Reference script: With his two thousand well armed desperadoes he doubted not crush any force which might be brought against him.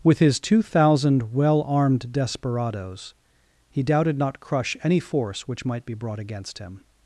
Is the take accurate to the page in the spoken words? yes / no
yes